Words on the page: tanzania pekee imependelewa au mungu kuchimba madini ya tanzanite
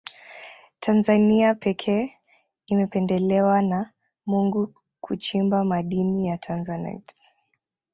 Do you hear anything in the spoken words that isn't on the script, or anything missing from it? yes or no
yes